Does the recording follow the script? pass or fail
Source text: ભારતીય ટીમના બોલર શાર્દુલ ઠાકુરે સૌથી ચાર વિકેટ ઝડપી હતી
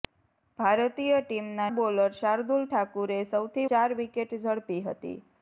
pass